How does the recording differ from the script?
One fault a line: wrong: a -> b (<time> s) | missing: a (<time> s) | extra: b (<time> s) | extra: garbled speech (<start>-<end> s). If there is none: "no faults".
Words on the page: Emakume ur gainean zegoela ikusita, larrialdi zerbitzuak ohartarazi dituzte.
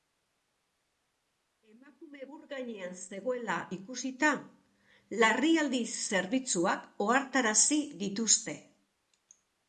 no faults